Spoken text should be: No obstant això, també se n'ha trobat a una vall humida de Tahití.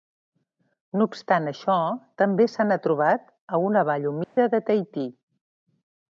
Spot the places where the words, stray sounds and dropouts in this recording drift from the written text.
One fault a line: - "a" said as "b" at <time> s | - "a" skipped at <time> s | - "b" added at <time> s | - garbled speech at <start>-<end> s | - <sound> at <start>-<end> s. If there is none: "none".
- dropout at 4.2-4.4 s